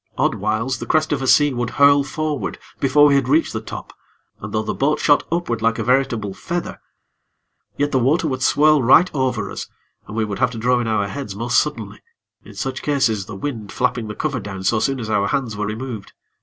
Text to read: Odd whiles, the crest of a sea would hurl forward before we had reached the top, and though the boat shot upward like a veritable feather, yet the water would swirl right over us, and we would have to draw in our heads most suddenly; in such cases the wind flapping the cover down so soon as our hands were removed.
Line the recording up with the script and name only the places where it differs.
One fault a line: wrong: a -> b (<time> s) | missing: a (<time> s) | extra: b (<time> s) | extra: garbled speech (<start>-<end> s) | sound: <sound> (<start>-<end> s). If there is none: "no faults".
no faults